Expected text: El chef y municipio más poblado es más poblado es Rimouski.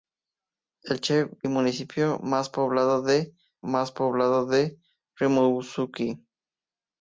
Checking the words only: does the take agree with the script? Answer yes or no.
yes